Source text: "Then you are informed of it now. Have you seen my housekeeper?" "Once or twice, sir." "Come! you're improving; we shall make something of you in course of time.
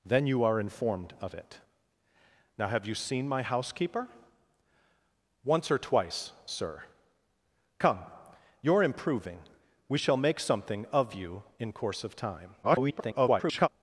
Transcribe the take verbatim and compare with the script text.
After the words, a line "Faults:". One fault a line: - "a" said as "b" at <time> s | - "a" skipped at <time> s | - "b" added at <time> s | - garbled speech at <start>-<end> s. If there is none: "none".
"Then you are informed of it now. Have you seen my housekeeper?" "Once or twice, sir." "Come! you're improving; we shall make something of you in course of time. [garbled]
Faults:
- garbled speech at 12.6-13.7 s